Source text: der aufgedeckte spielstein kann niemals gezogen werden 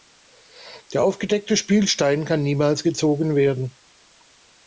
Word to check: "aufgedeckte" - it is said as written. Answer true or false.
true